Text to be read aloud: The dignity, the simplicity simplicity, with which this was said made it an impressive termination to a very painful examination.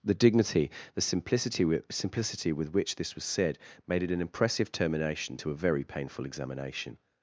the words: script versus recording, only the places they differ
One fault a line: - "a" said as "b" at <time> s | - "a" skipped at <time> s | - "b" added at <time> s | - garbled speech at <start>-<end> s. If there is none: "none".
none